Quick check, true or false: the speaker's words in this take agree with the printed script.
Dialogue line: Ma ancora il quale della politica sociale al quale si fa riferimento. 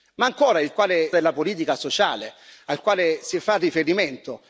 true